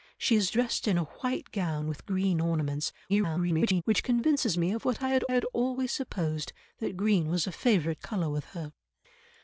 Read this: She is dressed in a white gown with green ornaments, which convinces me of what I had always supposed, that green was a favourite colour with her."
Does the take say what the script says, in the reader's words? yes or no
no